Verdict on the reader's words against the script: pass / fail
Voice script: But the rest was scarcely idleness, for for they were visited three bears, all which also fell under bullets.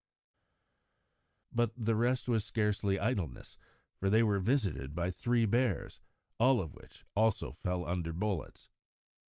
fail